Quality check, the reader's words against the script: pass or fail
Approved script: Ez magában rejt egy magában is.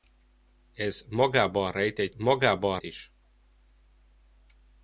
pass